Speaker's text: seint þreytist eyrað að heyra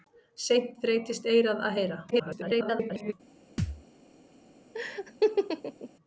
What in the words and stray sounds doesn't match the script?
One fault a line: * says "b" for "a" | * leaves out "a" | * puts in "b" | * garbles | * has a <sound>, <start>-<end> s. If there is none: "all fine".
* garbles
* has a thud, 3.6-3.8 s
* has a laugh, 4.7-5.9 s